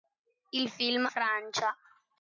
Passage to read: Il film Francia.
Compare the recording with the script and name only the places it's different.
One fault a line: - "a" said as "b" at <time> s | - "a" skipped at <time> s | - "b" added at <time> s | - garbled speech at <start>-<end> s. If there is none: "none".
none